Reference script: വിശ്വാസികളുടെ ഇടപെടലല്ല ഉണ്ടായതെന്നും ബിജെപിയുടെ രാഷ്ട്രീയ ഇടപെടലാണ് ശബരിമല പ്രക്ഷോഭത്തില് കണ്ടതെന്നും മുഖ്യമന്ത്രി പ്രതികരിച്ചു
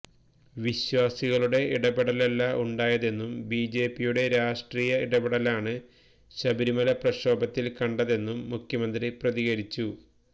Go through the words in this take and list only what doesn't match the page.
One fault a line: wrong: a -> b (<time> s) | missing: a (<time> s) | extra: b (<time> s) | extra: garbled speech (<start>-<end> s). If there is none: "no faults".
no faults